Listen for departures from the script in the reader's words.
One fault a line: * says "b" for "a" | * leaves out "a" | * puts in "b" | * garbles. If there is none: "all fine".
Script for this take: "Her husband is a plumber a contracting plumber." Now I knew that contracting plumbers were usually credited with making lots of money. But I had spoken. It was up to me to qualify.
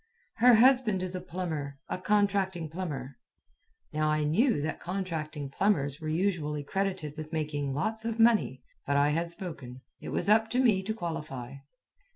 all fine